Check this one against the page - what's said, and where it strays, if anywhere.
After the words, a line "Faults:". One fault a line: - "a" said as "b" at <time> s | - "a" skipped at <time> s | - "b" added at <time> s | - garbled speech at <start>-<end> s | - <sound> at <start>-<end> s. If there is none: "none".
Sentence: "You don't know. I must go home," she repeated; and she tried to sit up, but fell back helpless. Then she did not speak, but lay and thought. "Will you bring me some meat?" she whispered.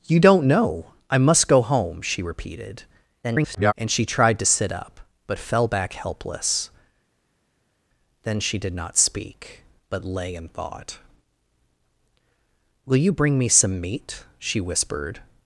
"You don't know. I must go home," she repeated; [garbled] and she tried to sit up, but fell back helpless. Then she did not speak, but lay and thought. "Will you bring me some meat?" she whispered.
Faults:
- garbled speech at 3.2-3.7 s